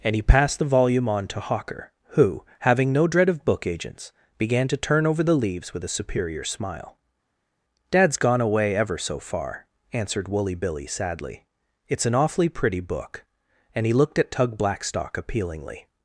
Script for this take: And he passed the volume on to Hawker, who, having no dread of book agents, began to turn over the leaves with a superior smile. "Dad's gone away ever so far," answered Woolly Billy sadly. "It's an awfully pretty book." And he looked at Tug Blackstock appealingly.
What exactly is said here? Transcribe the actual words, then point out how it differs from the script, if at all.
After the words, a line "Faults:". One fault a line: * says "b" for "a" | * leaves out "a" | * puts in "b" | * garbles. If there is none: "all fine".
And he passed the volume on to Hawker, who, having no dread of book agents, began to turn over the leaves with a superior smile. "Dad's gone away ever so far," answered Woolly Billy sadly. "It's an awfully pretty book." And he looked at Tug Blackstock appealingly.
Faults:
all fine